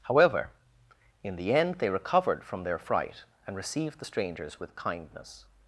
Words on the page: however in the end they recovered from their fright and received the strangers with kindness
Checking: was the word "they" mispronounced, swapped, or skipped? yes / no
no